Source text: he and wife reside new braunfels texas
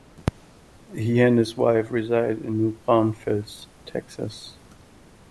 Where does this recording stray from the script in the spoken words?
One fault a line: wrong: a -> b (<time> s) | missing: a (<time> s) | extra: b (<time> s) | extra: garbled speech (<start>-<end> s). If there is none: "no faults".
extra: his (1.4 s)
extra: in (2.4 s)